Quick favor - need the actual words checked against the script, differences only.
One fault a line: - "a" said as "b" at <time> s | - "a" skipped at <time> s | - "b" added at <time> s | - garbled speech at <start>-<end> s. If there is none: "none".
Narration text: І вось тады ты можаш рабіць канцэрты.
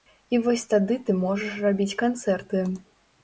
none